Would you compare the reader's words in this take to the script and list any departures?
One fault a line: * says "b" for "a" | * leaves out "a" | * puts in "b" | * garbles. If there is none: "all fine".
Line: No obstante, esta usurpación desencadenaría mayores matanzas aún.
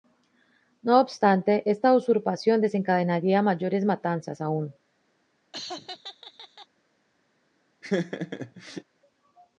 all fine